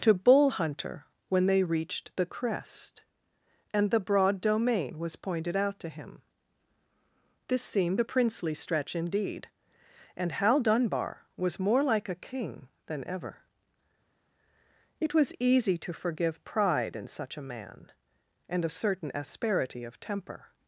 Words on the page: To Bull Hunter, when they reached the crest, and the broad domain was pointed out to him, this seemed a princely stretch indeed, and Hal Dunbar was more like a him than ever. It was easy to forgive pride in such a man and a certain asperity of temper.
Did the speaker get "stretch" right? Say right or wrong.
right